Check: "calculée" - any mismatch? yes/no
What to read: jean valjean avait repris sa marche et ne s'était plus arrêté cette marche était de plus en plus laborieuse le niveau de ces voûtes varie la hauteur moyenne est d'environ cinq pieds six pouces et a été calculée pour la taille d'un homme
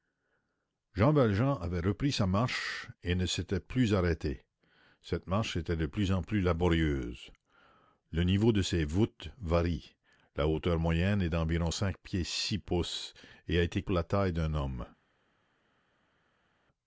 yes